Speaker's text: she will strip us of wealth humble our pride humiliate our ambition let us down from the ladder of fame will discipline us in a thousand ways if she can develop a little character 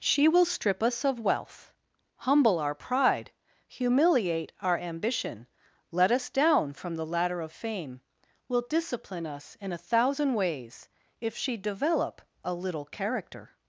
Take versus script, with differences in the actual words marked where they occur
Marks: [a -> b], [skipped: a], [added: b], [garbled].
she will strip us of wealth humble our pride humiliate our ambition let us down from the ladder of fame will discipline us in a thousand ways if she [skipped: can] develop a little character